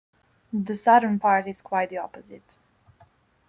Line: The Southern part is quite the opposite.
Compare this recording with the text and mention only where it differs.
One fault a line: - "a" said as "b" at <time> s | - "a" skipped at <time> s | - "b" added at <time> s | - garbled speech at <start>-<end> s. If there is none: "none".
none